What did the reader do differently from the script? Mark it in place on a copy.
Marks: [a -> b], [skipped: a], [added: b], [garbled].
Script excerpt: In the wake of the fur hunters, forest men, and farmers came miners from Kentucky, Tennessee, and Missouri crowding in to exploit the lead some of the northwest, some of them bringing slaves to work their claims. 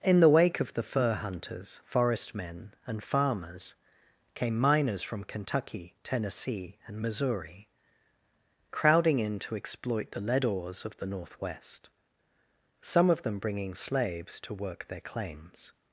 In the wake of the fur hunters, forest men, and farmers came miners from Kentucky, Tennessee, and Missouri crowding in to exploit the lead [some -> ores] of the northwest, some of them bringing slaves to work their claims.